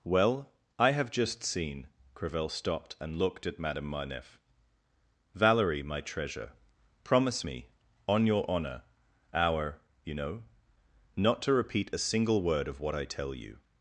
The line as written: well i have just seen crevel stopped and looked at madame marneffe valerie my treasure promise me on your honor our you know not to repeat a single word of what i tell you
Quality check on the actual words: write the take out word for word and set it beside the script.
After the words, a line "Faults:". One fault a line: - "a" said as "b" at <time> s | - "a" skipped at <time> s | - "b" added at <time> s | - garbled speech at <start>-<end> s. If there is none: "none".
well i have just seen crevel stopped and looked at madame marneffe valerie my treasure promise me on your honor our you know not to repeat a single word of what i tell you
Faults:
none